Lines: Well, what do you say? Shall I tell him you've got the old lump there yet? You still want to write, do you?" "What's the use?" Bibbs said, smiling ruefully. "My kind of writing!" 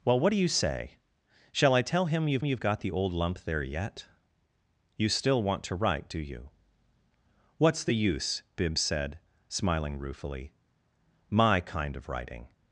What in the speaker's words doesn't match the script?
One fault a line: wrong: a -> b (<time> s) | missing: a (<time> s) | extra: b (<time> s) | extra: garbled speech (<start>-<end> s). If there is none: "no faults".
extra: you've (2.4 s)